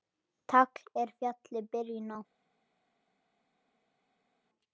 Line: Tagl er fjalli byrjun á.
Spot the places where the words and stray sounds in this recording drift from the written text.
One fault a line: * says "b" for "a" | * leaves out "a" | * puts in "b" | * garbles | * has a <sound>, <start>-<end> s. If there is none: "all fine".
all fine